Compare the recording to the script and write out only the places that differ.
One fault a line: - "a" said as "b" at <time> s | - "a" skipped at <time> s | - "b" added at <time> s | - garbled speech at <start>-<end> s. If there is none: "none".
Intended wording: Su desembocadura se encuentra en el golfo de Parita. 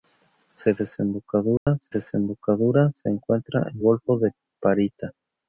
- "desembocadura se" added at 1.9 s
- "el" skipped at 3.8 s